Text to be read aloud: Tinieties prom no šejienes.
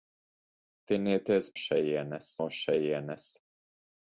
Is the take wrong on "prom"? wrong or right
wrong